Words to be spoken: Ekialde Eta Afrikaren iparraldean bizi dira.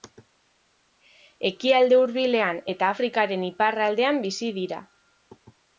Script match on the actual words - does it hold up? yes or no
no